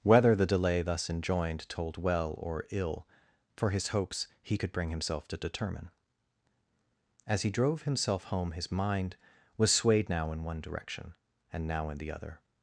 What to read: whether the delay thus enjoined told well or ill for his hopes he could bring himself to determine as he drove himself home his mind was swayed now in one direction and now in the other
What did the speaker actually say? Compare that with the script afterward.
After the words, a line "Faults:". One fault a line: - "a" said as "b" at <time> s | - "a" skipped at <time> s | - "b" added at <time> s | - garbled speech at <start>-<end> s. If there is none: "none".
whether the delay thus enjoined told well or ill for his hopes he could bring himself to determine as he drove himself home his mind was swayed now in one direction and now in the other
Faults:
none